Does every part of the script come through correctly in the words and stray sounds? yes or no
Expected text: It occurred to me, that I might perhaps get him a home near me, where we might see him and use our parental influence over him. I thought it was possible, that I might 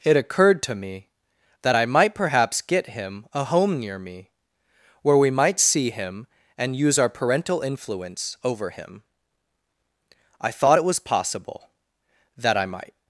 yes